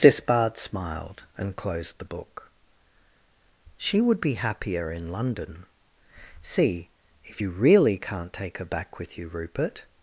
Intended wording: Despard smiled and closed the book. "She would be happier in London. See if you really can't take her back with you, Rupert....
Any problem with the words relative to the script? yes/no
no